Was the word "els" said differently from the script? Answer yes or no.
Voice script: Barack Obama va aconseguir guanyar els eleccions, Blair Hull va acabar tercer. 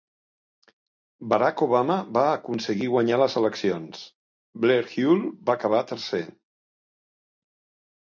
yes